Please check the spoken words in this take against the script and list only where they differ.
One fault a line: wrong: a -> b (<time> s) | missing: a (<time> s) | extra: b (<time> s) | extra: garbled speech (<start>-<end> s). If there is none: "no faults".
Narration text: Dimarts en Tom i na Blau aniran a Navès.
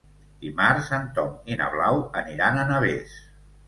no faults